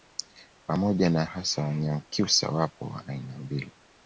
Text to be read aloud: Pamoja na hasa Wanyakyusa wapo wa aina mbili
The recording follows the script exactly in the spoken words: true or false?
true